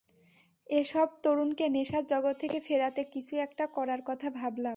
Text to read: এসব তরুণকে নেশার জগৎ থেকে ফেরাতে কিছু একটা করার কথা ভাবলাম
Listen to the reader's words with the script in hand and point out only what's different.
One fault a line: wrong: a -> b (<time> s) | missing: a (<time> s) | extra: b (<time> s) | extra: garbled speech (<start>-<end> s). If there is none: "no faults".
no faults